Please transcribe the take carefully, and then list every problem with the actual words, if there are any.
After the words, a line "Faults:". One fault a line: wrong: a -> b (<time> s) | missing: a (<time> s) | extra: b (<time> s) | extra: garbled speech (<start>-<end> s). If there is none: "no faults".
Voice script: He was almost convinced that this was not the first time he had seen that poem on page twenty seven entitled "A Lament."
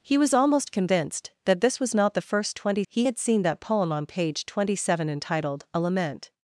He was almost convinced that this was not the first twenty he had seen that poem on page twenty seven entitled "A Lament."
Faults:
wrong: time -> twenty (2.5 s)